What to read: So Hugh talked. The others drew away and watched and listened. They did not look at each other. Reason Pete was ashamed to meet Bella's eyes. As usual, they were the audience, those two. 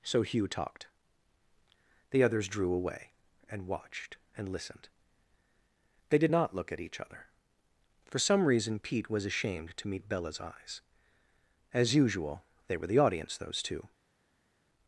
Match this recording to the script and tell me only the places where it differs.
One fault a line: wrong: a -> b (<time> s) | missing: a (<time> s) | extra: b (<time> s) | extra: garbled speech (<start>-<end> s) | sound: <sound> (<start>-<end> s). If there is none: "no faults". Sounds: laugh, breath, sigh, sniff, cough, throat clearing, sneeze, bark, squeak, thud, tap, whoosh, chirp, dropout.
extra: For some (8.1 s)